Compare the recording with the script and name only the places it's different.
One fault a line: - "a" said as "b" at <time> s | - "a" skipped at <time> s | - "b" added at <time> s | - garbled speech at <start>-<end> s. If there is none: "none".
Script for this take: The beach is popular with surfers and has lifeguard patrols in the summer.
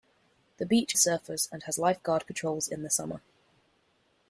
- "is popular with" skipped at 0.9 s